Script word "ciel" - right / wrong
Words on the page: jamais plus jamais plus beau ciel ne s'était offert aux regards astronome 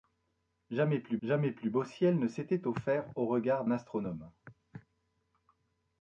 right